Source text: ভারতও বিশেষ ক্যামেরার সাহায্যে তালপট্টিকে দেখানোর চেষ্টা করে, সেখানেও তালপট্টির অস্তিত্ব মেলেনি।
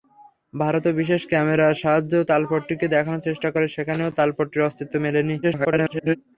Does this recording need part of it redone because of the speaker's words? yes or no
yes